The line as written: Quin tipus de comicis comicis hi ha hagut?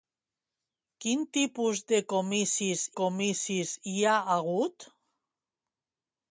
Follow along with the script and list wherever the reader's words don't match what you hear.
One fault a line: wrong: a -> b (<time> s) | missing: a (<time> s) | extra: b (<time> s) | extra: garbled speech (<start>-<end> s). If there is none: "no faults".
no faults